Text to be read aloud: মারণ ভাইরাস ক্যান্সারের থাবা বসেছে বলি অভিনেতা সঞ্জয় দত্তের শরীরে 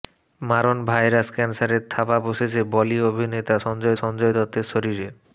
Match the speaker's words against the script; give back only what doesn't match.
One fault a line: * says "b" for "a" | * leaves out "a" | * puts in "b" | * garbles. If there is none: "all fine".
* puts in "সঞ্জয়"